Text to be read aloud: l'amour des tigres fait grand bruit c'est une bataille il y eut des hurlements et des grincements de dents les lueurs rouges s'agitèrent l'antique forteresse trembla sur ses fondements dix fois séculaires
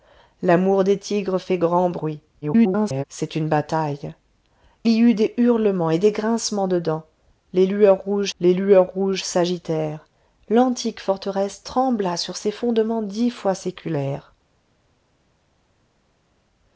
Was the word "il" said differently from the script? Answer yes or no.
yes